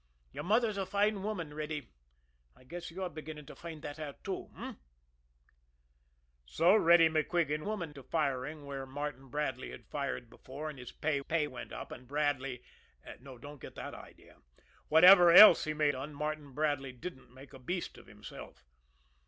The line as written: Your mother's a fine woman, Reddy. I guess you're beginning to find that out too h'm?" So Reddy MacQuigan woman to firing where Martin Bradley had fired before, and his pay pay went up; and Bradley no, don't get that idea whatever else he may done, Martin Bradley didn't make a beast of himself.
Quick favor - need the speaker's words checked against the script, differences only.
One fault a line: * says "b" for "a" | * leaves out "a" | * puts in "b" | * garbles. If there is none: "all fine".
all fine